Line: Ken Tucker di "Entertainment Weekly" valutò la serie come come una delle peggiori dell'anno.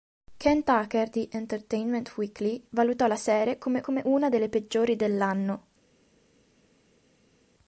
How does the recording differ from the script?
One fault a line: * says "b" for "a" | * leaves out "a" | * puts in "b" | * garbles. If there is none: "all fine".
all fine